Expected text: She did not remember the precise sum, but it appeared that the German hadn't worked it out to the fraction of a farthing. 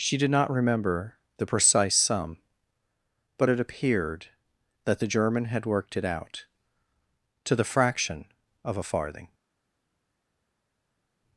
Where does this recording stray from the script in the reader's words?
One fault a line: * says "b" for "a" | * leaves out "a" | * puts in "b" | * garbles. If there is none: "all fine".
* says "had" for "hadn't"